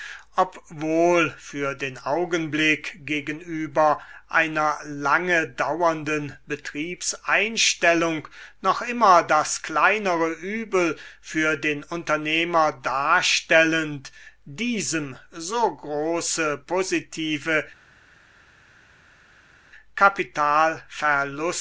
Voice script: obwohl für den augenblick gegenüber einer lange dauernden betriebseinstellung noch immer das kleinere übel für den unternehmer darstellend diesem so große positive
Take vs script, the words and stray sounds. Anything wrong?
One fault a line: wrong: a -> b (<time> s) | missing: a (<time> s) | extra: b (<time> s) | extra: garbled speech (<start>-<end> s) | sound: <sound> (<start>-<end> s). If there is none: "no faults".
no faults